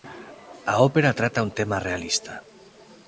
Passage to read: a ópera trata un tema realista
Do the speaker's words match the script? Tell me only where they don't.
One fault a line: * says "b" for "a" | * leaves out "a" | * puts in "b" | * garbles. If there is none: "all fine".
all fine